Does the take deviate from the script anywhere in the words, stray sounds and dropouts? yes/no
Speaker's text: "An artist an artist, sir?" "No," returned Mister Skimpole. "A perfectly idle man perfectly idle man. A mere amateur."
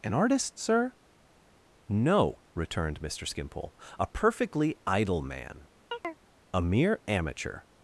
yes